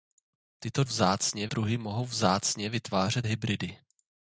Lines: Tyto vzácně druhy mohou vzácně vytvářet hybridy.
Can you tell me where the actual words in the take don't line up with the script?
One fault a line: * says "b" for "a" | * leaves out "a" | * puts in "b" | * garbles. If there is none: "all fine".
all fine